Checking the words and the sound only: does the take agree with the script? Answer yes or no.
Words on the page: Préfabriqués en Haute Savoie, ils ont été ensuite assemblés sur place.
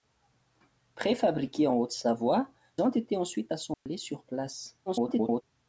no